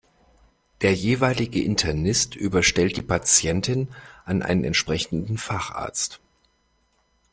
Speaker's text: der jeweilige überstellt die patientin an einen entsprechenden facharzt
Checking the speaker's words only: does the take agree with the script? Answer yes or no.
no